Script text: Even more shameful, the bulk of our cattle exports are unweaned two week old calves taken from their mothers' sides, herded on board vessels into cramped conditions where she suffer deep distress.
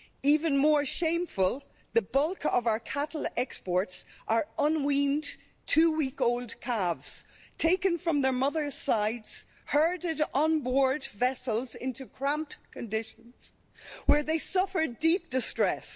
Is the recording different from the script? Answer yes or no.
yes